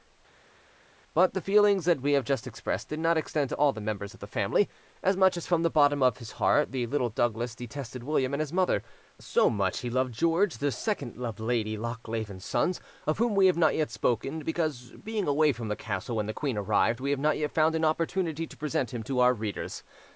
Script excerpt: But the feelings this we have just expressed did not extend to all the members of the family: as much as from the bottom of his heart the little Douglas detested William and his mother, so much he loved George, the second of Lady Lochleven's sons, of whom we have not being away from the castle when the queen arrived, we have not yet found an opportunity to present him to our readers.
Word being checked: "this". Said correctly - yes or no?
no